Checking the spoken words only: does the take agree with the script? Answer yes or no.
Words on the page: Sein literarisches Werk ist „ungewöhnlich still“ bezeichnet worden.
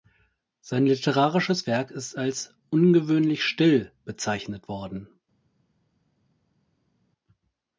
no